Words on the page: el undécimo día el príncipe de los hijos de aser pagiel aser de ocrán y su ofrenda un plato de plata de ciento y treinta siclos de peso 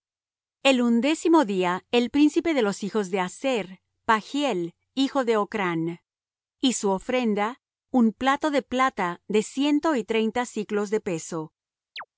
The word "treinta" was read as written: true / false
true